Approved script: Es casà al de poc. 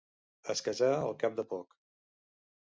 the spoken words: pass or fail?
fail